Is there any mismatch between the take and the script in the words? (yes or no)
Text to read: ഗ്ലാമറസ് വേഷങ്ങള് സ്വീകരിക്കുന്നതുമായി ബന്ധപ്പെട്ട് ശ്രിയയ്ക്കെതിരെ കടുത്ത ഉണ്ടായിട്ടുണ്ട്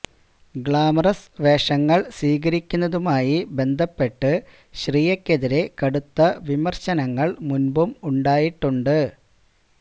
yes